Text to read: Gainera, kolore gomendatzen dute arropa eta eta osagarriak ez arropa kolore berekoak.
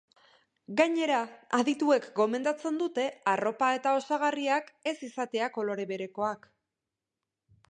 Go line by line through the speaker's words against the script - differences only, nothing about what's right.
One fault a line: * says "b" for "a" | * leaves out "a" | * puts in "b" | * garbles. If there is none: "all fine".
* says "adituek" for "kolore"
* leaves out "eta"
* says "izatea" for "arropa"